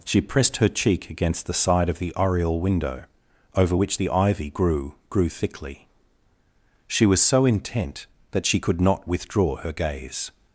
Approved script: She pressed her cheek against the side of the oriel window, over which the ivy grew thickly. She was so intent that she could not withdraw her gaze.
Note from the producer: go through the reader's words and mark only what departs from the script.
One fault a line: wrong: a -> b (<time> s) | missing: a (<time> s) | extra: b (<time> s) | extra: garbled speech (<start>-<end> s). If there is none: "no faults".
extra: grew (5.1 s)